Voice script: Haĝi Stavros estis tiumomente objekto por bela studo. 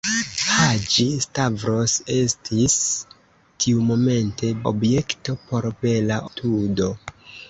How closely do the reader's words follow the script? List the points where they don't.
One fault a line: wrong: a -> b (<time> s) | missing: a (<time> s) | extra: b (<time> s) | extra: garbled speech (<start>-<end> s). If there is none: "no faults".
no faults